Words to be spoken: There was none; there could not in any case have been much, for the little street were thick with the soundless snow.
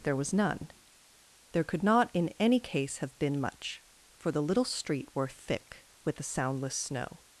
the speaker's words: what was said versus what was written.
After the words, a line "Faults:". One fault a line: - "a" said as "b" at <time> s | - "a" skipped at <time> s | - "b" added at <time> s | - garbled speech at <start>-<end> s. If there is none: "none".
There was none; there could not in any case have been much, for the little street were thick with the soundless snow.
Faults:
none